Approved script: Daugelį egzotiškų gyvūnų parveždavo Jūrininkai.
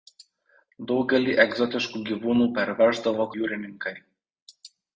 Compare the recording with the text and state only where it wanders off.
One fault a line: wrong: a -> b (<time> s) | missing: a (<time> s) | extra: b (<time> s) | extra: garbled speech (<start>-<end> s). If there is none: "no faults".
no faults